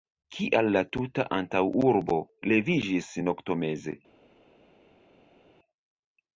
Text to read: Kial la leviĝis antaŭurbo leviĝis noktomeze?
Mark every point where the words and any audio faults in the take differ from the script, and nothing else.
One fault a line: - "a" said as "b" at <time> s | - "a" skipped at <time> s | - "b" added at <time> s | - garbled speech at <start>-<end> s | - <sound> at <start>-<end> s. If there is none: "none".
- "leviĝis" said as "tuta" at 0.9 s